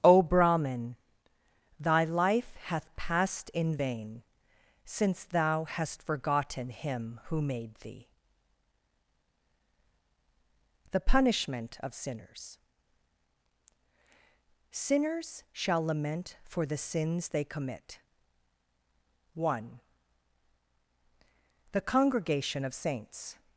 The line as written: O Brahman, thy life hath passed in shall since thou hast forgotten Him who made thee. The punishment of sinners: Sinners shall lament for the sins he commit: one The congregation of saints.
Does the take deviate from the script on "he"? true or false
true